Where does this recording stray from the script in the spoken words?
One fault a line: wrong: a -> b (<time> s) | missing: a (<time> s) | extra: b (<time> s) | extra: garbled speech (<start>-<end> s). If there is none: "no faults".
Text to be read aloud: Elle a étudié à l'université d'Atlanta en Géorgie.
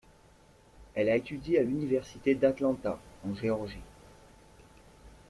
no faults